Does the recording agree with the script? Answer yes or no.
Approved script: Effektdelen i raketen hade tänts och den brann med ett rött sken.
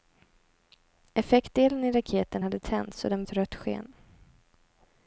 no